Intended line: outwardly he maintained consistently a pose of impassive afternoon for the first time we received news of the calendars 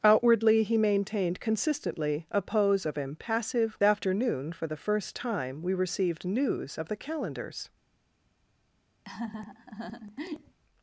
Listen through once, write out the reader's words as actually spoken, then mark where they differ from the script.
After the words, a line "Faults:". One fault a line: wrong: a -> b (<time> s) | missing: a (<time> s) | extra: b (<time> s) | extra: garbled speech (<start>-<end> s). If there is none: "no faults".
outwardly he maintained consistently a pose of impassive afternoon for the first time we received news of the calendars
Faults:
no faults